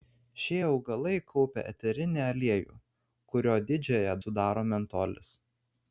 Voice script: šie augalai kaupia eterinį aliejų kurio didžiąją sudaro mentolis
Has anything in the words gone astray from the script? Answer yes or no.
no